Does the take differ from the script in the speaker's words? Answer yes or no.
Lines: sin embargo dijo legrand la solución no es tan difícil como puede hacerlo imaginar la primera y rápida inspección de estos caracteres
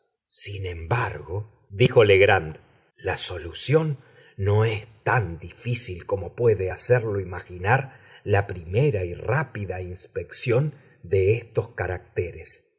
no